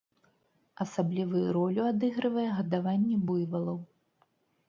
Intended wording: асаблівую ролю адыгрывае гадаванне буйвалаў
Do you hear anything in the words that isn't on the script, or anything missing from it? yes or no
no